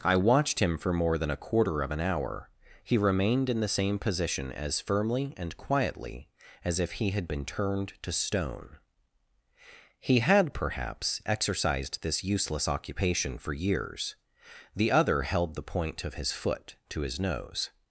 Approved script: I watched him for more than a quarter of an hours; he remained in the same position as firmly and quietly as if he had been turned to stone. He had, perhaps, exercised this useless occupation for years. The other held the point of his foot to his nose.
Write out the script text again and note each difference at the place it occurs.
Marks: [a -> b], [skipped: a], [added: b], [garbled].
I watched him for more than a quarter of an [hours; -> hour] he remained in the same position as firmly and quietly as if he had been turned to stone. He had, perhaps, exercised this useless occupation for years. The other held the point of his foot to his nose.